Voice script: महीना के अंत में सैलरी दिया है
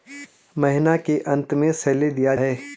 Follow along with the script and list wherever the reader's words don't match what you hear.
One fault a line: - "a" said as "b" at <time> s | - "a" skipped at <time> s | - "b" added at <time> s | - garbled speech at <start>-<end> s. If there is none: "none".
none